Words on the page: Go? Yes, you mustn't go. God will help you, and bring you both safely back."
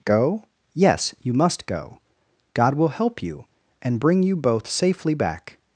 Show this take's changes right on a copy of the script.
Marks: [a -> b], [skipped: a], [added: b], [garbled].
Go? Yes, you [mustn't -> must] go. God will help you, and bring you both safely back."